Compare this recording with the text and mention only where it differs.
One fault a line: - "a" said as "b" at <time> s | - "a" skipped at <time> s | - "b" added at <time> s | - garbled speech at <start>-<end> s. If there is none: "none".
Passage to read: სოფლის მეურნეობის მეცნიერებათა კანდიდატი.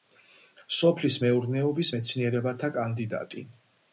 none